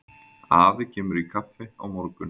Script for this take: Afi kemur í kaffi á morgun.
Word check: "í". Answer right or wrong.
right